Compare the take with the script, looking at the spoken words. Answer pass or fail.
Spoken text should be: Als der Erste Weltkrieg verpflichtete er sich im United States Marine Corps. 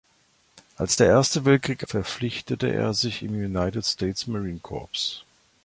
pass